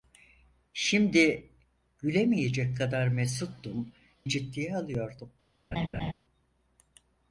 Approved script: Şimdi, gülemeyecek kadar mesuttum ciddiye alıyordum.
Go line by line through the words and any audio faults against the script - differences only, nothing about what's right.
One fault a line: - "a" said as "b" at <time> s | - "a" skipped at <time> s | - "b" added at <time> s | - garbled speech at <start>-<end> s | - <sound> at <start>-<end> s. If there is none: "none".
- laugh at 5.7-6.1 s